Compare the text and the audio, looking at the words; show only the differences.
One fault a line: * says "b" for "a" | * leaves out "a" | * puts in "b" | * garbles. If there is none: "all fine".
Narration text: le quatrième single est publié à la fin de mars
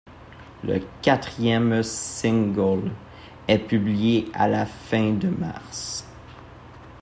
all fine